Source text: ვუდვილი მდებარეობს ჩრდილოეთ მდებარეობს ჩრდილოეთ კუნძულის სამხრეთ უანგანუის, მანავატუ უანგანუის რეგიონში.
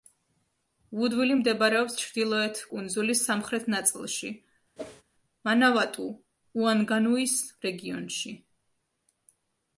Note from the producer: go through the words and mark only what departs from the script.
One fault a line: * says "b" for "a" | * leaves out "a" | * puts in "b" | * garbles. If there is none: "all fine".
* leaves out "მდებარეობს ჩრდილოეთ"
* says "ნაწილში" for "უანგანუის"